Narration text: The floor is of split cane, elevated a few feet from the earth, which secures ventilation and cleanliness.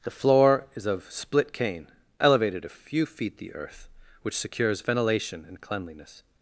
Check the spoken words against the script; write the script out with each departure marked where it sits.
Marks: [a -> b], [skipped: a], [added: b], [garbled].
The floor is of split cane, elevated a few feet [skipped: from] the earth, which secures ventilation and cleanliness.